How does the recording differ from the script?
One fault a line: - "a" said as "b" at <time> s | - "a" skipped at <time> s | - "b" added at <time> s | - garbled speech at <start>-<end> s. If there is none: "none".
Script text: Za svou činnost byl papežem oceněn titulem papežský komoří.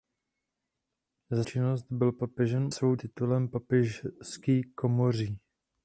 - "svou" skipped at 1.4 s
- "oceněn" said as "svou" at 2.7 s